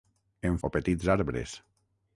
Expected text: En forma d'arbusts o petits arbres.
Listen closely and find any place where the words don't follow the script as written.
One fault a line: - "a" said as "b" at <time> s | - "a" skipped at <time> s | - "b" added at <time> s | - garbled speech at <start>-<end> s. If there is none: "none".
- "forma d'arbusts" skipped at 0.6 s